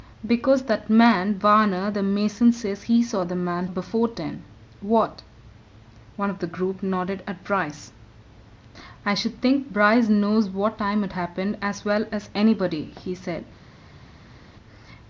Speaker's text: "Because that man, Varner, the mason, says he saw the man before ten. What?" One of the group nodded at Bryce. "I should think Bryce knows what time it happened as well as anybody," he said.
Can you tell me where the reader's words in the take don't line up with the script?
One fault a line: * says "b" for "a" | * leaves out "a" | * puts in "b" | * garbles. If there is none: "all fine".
all fine